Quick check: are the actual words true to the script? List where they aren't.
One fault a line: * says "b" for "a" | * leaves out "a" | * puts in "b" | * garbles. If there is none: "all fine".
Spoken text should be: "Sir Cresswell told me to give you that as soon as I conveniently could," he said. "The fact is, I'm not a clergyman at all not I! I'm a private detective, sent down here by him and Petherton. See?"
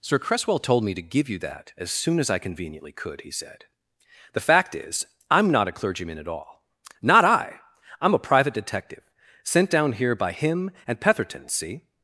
all fine